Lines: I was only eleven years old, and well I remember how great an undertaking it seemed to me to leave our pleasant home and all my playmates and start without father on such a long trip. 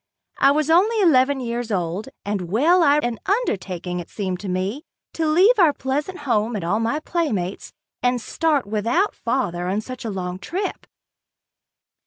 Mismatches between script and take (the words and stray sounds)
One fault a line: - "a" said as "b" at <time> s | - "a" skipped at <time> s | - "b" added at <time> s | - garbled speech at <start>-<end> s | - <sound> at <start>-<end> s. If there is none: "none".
- "remember how great" skipped at 3.0 s